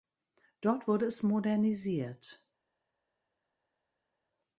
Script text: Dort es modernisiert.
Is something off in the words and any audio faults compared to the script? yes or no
yes